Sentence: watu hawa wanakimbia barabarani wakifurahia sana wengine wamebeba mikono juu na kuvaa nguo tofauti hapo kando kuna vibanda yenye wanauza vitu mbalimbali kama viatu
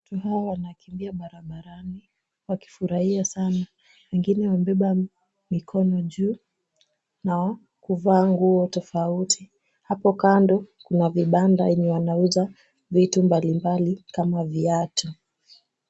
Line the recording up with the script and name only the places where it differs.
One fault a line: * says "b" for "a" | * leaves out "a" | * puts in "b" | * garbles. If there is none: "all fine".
all fine